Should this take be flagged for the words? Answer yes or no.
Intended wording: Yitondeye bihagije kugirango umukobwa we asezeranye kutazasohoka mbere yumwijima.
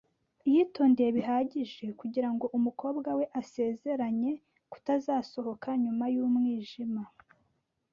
yes